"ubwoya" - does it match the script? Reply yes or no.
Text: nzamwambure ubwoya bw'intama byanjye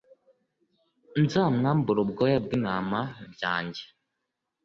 yes